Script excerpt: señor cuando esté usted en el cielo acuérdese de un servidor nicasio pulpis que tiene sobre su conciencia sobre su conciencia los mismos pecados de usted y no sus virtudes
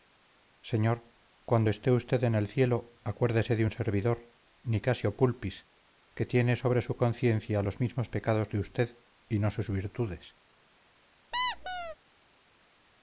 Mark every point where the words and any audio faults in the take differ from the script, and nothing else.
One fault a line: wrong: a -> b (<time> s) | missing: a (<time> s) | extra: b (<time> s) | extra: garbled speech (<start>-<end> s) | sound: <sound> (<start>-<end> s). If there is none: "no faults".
missing: sobre su conciencia (7.6 s)
sound: squeak (11.3-12.0 s)